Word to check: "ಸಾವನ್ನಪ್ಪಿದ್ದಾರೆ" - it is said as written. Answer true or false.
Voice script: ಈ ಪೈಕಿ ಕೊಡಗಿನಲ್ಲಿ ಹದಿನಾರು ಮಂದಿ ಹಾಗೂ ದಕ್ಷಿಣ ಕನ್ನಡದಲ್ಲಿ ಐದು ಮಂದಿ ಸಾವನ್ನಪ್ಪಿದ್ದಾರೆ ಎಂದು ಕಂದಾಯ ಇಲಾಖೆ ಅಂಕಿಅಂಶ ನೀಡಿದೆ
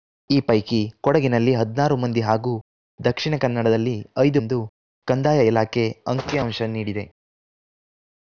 false